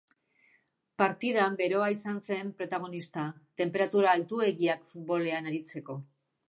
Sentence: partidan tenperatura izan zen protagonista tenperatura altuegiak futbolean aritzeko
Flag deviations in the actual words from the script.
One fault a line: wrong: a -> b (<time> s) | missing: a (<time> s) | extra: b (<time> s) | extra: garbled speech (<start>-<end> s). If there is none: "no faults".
wrong: tenperatura -> beroa (1.6 s)